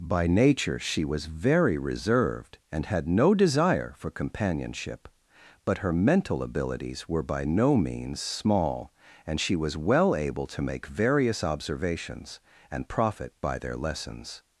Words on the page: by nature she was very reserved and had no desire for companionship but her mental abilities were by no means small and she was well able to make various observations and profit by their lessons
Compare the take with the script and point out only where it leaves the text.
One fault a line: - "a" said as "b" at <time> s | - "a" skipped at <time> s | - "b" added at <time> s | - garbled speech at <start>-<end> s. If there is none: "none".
none